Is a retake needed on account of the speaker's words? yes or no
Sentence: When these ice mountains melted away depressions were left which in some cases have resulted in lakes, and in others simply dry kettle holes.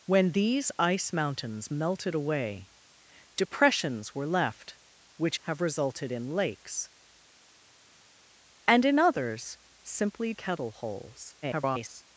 yes